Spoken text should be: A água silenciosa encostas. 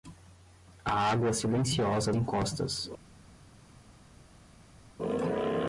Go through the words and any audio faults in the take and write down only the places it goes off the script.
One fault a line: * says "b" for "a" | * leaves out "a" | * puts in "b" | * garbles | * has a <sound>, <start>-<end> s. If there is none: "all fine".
all fine